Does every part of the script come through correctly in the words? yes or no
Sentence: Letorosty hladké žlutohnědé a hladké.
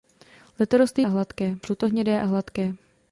yes